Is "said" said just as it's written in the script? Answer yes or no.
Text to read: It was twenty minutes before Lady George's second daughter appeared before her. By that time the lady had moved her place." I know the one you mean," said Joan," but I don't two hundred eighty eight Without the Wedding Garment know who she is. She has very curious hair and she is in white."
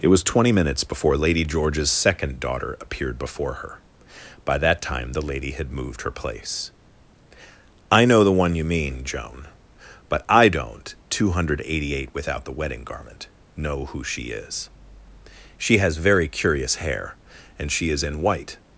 no